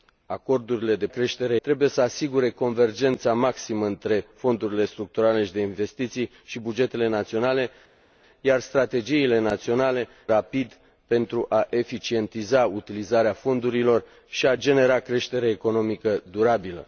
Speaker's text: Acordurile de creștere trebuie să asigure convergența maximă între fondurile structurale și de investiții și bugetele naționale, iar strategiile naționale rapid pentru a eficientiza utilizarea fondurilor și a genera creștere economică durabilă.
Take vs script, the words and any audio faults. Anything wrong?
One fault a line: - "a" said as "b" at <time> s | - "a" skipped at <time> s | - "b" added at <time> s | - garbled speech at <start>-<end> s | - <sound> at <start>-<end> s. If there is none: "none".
none